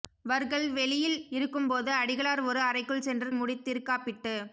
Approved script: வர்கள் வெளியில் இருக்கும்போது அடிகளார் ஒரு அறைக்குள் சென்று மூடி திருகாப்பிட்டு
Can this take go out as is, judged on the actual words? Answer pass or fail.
pass